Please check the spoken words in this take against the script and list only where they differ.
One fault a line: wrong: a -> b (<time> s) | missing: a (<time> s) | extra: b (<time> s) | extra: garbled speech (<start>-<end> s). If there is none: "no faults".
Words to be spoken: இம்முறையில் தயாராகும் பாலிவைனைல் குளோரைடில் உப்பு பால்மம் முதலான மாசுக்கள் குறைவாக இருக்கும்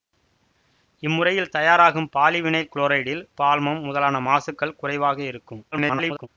missing: உப்பு (3.2 s)
extra: garbled speech (5.7-6.3 s)